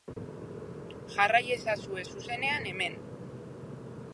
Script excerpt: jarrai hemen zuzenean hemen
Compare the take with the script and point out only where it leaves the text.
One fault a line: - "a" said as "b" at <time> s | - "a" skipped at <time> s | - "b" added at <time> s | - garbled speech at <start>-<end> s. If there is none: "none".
- "hemen" said as "ezazue" at 1.6 s